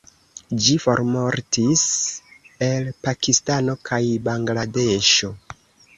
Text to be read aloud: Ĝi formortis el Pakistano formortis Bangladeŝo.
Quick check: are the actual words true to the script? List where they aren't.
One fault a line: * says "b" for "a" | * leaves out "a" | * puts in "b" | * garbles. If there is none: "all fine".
* says "kaj" for "formortis"